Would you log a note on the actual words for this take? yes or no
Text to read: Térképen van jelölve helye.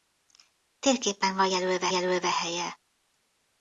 yes